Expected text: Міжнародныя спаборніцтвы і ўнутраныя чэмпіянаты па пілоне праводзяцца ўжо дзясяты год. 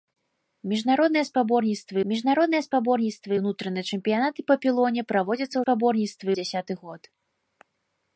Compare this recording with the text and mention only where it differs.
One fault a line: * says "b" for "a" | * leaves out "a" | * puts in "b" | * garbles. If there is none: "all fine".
* puts in "міжнародныя спаборніцтвы"
* says "спаборніцтвы" for "ўжо"